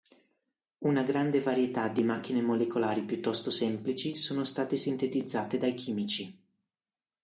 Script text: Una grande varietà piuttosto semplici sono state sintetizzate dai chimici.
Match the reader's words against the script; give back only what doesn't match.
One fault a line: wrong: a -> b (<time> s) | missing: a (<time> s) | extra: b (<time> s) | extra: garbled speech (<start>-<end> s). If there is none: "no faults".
extra: di macchine molecolari (1.9 s)